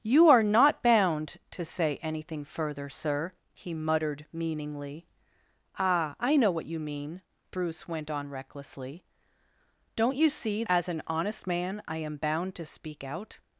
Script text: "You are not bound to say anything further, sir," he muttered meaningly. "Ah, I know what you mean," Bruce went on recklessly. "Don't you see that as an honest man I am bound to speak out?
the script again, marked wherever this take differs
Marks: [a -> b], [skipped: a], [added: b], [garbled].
"You are not bound to say anything further, sir," he muttered meaningly. "Ah, I know what you mean," Bruce went on recklessly. "Don't you see [skipped: that] as an honest man I am bound to speak out?